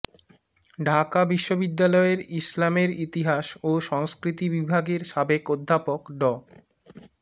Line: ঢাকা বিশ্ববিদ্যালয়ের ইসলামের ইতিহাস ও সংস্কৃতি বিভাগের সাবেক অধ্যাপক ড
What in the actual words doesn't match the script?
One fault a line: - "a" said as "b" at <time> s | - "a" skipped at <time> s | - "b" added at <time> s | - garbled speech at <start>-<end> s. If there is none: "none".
none